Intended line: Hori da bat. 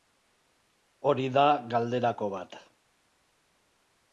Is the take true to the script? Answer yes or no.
no